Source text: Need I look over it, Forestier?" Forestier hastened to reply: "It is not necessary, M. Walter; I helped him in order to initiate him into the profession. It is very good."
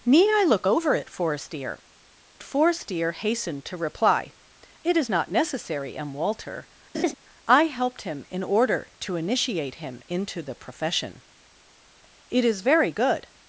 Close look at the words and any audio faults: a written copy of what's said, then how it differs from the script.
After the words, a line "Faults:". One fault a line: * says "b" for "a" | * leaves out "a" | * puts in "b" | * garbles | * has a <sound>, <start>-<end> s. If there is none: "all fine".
Need I look over it, Forestier?" Forestier hastened to reply: "It is not necessary, M. Walter; I helped him in order to initiate him into the profession. It is very good."
Faults:
* has a laugh, 6.9-7.1 s